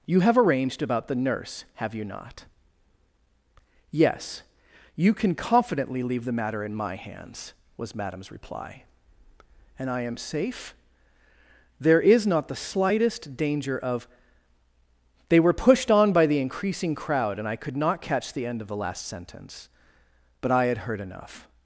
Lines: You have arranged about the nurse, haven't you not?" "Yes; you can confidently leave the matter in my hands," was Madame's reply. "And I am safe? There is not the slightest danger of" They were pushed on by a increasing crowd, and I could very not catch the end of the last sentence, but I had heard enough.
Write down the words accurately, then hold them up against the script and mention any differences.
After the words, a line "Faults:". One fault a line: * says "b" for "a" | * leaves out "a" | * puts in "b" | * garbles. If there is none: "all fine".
You have arranged about the nurse, have you not?" "Yes; you can confidently leave the matter in my hands," was Madame's reply. "And I am safe? There is not the slightest danger of" They were pushed on by the increasing crowd, and I could not catch the end of the last sentence, but I had heard enough.
Faults:
* says "have" for "haven't"
* says "the" for "a"
* leaves out "very"